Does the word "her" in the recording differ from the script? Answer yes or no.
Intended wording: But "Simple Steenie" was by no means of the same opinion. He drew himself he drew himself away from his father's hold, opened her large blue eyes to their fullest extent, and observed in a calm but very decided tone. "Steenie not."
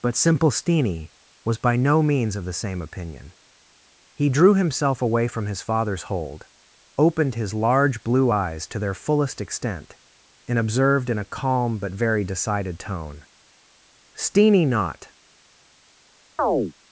yes